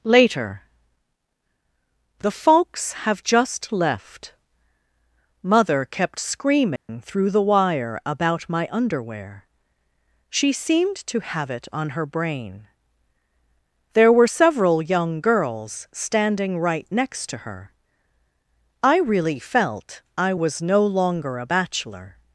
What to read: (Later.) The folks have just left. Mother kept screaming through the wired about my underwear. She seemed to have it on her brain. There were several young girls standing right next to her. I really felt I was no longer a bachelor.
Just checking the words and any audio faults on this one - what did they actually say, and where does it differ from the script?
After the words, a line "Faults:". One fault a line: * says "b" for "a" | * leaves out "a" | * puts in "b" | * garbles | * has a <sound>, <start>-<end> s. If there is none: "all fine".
(Later.) The folks have just left. Mother kept screaming through the wire about my underwear. She seemed to have it on her brain. There were several young girls standing right next to her. I really felt I was no longer a bachelor.
Faults:
* has a dropout, 6.8-6.9 s
* says "wire" for "wired"